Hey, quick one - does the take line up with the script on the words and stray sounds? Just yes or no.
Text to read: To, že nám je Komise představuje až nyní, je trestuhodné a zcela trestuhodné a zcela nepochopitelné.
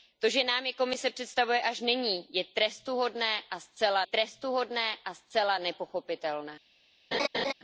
no